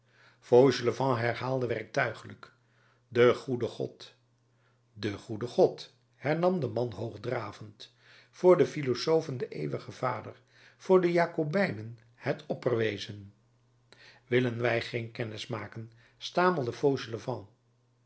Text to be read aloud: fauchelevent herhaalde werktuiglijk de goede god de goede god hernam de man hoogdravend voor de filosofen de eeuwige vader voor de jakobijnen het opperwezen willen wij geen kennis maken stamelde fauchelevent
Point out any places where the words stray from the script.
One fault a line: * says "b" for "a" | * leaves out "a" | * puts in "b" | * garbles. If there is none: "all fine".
all fine